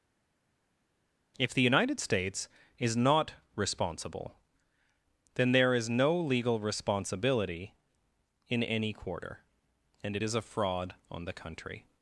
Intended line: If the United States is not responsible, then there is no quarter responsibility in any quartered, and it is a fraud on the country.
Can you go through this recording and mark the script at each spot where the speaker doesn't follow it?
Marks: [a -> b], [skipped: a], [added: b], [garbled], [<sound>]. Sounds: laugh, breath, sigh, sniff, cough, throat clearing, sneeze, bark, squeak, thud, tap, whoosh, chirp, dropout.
If the United States is not responsible, then there is no [quarter -> legal] responsibility in any [quartered, -> quarter] and it is a fraud on the country.